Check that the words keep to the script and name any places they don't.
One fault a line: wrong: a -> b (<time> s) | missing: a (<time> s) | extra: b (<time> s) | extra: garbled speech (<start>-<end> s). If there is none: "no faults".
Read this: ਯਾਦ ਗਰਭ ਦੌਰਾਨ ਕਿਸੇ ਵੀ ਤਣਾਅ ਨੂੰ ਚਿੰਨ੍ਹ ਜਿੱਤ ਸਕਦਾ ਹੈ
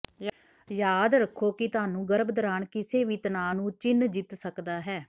extra: ਰੱਖੋ ਕਿ ਤੁਹਾਨੂੰ (1.1 s)